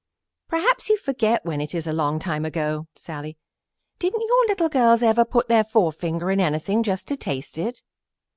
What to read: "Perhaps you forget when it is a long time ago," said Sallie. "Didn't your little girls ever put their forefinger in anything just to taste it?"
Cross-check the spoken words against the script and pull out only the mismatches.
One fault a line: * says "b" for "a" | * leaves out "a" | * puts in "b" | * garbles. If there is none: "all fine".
* leaves out "said"